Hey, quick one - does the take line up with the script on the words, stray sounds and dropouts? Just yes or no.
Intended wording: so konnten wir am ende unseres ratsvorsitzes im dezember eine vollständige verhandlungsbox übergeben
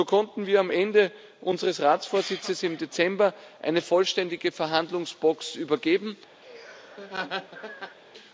no